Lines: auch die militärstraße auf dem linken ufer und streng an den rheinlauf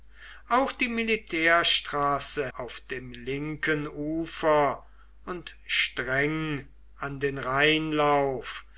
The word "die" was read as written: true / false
true